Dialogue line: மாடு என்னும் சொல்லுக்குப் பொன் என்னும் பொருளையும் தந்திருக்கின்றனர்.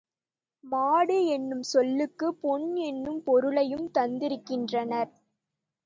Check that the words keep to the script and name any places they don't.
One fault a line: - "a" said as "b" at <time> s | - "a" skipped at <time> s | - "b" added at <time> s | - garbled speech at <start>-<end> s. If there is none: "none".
none